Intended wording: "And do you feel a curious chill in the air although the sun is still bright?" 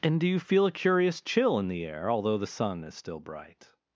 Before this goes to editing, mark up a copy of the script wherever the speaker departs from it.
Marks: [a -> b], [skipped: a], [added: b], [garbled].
"And do you feel a curious chill in the air although the sun is still bright?"